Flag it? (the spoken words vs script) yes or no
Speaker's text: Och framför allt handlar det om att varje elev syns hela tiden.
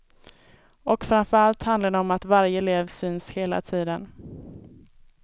no